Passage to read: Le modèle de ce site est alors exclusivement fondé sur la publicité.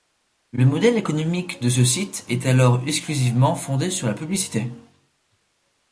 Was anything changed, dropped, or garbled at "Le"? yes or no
no